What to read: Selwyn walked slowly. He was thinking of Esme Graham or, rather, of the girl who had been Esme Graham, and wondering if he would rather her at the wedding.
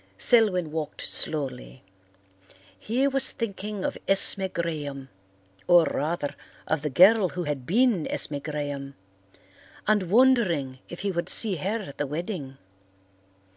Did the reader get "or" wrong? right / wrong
right